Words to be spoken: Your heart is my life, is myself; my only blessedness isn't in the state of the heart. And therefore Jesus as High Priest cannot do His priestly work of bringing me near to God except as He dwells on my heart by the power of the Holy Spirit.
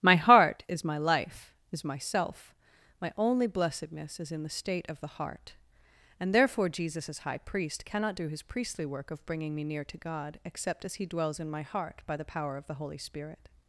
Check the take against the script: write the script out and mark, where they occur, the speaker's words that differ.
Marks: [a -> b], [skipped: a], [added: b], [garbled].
[Your -> My] heart is my life, is myself; my only blessedness [isn't -> is] in the state of the heart. And therefore Jesus as High Priest cannot do His priestly work of bringing me near to God except as He dwells [on -> in] my heart by the power of the Holy Spirit.